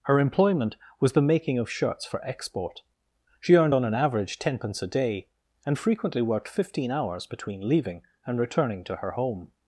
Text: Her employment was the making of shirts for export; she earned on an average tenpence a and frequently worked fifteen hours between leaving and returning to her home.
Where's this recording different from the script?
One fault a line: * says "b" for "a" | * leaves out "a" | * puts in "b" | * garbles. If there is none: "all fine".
* puts in "day"